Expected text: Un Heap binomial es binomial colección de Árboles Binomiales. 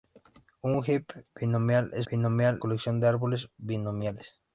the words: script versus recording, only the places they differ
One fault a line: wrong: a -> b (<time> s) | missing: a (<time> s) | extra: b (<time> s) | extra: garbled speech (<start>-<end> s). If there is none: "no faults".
no faults